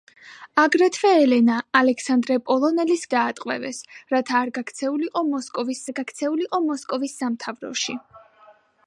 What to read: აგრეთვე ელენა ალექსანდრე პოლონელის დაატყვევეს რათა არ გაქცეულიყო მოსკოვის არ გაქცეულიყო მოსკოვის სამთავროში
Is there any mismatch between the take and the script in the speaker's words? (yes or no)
no